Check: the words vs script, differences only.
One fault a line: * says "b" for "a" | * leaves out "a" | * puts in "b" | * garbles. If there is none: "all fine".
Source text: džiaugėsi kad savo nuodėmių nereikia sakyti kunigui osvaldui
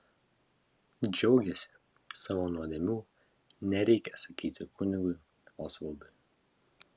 * leaves out "kad"